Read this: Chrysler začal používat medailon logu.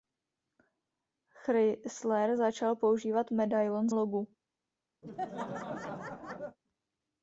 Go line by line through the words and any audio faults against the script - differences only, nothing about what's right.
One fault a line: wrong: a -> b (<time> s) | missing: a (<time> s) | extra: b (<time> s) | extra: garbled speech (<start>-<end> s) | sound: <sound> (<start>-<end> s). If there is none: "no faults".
sound: laugh (5.0-6.6 s)